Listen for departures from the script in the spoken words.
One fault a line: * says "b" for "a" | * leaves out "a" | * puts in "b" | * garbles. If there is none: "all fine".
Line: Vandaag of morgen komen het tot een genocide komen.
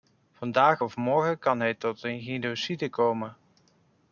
* says "kan" for "komen"